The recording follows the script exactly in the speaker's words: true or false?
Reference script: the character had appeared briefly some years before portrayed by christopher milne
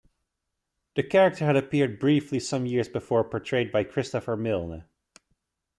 true